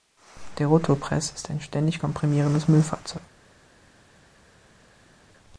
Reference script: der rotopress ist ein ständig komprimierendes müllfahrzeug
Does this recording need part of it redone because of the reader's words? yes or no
no